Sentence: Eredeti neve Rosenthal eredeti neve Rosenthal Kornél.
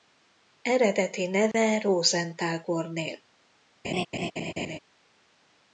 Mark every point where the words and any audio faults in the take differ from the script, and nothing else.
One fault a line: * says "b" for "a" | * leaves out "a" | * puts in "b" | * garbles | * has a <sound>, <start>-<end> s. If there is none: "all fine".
* has a dropout, 1.5-1.5 s
* leaves out "eredeti neve Rosenthal"
* has a laugh, 3.8-4.8 s